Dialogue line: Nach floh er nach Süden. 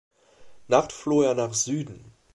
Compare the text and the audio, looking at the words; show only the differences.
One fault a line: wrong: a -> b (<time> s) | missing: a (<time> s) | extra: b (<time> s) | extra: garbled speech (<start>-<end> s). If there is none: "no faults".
no faults